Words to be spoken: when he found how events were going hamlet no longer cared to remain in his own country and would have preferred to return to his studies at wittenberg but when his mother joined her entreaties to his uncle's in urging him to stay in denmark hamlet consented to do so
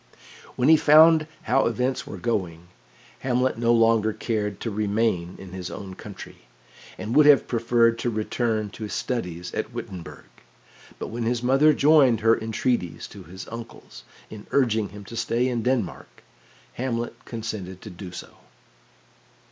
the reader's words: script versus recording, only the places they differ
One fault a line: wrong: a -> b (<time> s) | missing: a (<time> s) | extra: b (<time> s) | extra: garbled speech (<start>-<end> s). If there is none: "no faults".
no faults